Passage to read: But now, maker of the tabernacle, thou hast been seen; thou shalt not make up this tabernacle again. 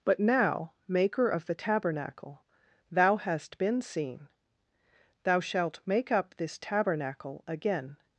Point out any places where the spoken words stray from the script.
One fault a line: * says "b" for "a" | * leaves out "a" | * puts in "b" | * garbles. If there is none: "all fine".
* leaves out "not"